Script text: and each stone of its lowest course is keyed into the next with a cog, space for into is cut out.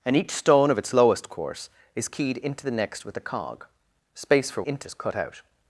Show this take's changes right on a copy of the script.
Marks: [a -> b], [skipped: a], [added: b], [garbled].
and each stone of its lowest course is keyed into the next with a cog, space for into is cut out.